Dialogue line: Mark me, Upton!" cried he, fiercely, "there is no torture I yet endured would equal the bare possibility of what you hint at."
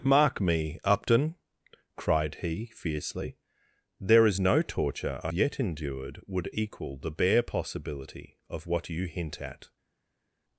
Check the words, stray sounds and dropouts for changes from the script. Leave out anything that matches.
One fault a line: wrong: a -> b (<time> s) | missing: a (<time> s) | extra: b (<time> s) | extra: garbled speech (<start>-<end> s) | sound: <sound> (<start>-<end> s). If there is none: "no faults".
no faults